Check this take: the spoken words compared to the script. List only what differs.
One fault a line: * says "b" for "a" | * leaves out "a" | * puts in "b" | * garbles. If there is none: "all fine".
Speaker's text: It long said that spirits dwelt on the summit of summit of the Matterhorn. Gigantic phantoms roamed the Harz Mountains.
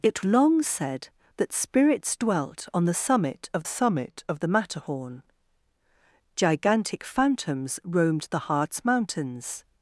all fine